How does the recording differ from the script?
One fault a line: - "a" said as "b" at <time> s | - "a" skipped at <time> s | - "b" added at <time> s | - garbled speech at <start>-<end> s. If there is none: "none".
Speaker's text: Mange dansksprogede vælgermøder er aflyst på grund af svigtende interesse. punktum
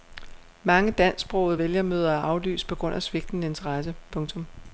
none